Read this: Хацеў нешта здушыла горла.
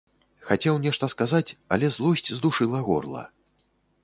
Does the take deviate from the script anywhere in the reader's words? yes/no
yes